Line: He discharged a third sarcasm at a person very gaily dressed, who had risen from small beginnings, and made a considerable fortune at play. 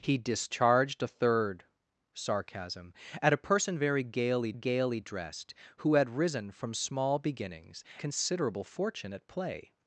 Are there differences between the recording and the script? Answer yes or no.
yes